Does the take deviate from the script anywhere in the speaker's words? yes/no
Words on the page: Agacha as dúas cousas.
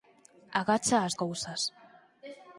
yes